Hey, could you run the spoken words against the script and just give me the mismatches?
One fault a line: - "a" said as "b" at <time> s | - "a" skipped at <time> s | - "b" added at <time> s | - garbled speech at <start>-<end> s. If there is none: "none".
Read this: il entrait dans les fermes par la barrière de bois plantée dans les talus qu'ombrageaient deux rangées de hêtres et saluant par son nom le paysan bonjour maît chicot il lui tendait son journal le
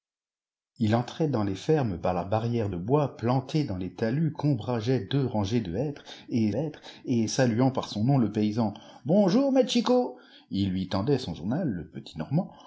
- "hêtres et" added at 6.5 s